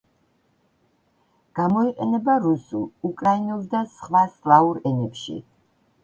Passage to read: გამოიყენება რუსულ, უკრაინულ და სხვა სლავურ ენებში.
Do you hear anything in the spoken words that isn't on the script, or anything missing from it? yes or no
no